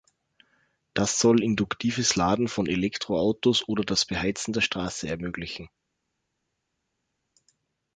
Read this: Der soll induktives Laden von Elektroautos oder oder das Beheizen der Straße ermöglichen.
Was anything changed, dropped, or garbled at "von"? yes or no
no